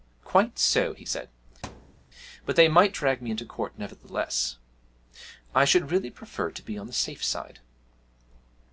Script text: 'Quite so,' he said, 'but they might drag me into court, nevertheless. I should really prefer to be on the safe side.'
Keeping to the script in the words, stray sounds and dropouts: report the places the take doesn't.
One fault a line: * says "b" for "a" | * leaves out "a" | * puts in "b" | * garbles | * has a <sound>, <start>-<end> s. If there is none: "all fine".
* has a thud, 1.6-2.1 s